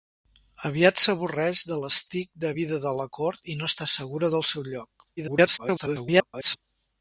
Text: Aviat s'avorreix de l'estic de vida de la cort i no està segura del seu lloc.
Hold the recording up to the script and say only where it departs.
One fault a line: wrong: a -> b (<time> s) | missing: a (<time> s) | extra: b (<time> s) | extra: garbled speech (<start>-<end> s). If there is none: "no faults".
extra: garbled speech (5.2-6.6 s)